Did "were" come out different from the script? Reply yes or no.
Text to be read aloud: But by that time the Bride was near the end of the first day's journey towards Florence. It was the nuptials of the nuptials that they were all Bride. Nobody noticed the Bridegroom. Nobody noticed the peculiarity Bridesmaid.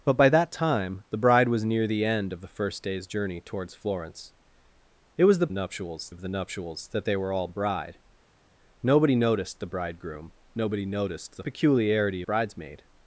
no